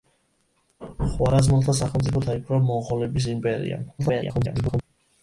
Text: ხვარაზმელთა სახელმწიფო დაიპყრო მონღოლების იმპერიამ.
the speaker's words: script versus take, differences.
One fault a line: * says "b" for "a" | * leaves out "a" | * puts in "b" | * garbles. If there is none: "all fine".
* garbles